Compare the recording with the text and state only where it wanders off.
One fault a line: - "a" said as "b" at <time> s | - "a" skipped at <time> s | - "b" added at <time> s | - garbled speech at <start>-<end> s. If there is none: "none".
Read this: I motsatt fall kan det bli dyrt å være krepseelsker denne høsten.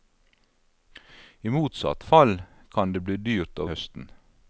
- "være krepseelsker denne" skipped at 3.7 s